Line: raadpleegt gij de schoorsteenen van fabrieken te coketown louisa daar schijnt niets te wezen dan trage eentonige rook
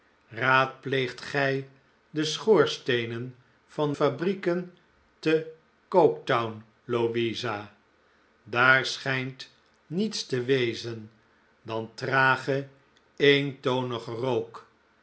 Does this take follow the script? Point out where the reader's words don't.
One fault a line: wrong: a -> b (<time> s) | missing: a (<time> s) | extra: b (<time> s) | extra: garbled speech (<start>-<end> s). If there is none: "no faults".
no faults